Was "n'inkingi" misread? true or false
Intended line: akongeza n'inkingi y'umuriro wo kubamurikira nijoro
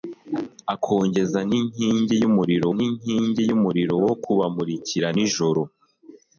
false